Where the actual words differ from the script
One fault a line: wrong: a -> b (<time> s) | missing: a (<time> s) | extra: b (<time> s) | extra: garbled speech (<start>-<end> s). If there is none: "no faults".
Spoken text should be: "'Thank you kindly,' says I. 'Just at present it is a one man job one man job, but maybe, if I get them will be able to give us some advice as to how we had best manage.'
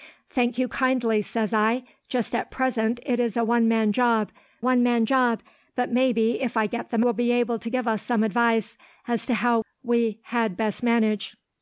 no faults